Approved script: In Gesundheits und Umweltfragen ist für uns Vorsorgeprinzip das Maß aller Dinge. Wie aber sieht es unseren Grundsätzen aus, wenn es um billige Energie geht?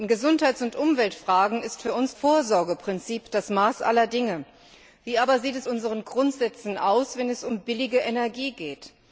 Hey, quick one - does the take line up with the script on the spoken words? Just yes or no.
yes